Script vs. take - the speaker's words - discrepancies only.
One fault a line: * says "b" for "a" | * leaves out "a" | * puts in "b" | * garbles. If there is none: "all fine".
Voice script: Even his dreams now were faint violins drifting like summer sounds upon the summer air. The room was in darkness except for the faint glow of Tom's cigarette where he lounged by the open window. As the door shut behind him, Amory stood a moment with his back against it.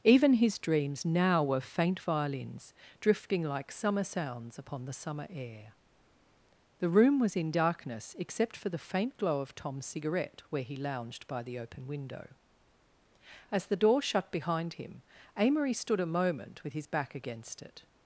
all fine